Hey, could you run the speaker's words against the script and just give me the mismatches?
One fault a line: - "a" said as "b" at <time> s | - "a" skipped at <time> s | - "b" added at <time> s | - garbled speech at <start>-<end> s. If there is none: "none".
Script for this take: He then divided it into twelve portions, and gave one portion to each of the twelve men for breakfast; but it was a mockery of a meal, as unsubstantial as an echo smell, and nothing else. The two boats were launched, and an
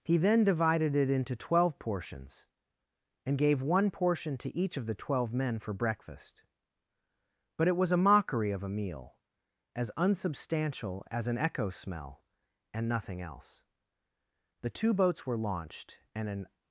none